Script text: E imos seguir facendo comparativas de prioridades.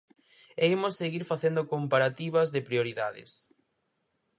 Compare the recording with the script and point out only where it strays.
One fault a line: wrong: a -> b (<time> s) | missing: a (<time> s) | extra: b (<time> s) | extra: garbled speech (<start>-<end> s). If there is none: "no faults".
no faults